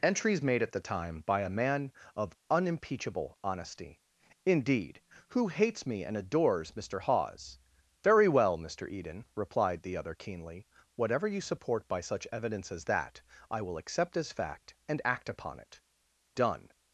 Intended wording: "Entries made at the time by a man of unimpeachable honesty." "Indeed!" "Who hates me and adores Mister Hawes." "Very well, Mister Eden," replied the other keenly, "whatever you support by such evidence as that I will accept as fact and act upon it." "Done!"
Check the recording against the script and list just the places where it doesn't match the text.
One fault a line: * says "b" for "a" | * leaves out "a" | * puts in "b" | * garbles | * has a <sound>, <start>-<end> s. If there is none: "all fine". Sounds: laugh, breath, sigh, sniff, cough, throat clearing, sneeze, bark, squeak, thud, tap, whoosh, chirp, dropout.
all fine